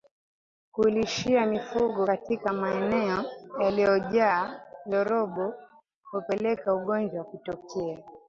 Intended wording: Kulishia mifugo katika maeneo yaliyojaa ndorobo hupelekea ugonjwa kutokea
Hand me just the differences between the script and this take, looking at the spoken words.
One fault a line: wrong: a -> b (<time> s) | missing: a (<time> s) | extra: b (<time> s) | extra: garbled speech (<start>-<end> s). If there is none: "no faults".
no faults